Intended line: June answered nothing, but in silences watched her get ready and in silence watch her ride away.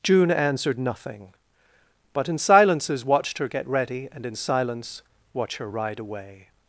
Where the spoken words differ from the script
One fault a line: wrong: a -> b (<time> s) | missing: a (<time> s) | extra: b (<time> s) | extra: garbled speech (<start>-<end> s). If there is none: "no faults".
no faults